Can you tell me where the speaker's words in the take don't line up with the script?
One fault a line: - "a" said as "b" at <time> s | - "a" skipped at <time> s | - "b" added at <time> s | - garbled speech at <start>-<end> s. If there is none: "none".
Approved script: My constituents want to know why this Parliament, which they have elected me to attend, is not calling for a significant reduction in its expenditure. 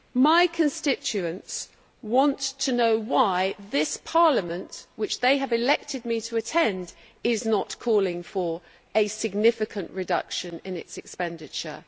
none